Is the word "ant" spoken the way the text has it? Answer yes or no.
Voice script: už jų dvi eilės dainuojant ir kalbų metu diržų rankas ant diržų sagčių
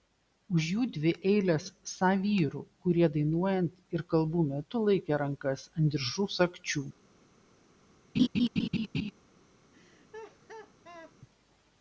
yes